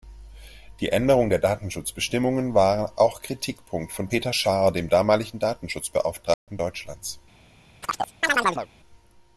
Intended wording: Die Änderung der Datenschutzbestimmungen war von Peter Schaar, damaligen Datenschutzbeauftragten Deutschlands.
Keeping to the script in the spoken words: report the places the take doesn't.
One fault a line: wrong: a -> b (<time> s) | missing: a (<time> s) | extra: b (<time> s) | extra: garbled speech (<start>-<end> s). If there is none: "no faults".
extra: auch Kritikpunkt (3.0 s)
extra: dem (4.7 s)